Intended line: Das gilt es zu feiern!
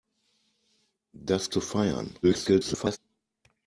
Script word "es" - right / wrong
wrong